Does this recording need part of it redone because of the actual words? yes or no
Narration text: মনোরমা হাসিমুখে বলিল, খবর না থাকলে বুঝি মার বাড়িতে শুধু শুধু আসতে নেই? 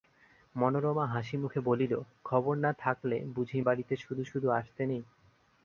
yes